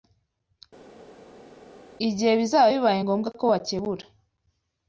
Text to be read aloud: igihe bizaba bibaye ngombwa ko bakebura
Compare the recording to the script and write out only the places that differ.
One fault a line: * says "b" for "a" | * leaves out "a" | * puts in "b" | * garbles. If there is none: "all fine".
all fine